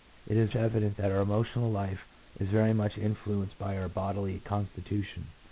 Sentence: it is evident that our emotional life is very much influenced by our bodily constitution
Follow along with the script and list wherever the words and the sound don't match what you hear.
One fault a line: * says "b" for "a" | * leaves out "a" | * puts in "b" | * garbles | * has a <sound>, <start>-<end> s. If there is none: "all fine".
all fine